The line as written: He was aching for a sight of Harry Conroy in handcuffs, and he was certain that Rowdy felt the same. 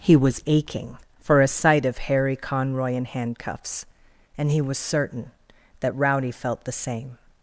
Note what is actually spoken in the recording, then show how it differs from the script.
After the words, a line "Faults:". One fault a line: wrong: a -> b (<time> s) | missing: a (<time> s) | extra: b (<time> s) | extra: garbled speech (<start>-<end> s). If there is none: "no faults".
He was aching for a sight of Harry Conroy in handcuffs, and he was certain that Rowdy felt the same.
Faults:
no faults